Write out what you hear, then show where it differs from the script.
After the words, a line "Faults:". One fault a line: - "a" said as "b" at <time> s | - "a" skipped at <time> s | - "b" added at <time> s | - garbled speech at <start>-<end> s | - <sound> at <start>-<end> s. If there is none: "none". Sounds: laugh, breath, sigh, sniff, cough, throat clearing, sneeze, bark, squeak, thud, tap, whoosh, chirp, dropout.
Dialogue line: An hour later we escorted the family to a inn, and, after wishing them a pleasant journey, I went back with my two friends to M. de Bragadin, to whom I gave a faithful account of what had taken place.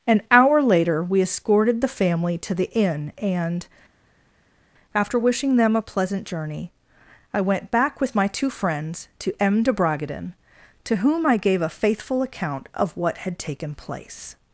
An hour later we escorted the family to the inn, and, after wishing them a pleasant journey, I went back with my two friends to M. de Bragadin, to whom I gave a faithful account of what had taken place.
Faults:
- "a" said as "the" at 2.5 s